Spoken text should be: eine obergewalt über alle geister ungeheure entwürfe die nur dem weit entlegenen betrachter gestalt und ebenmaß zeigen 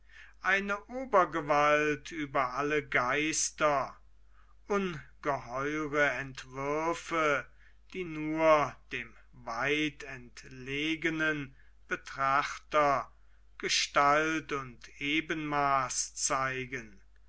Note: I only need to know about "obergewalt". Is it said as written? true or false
true